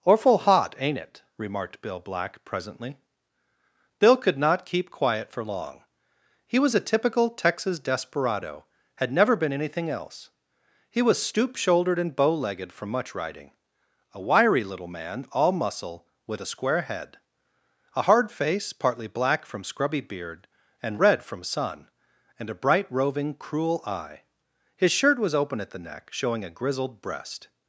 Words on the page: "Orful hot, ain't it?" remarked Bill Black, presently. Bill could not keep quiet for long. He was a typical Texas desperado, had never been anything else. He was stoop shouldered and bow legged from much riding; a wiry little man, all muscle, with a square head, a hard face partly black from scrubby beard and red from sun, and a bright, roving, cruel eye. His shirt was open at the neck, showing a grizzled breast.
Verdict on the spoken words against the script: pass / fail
pass